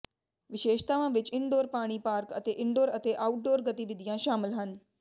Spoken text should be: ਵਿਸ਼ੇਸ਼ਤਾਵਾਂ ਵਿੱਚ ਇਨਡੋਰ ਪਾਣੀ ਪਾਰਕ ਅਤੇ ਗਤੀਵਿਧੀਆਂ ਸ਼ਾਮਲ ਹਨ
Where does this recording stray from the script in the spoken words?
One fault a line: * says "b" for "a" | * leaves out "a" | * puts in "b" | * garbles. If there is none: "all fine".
* puts in "ਇਨਡੋਰ ਅਤੇ ਆਊਟਡੋਰ"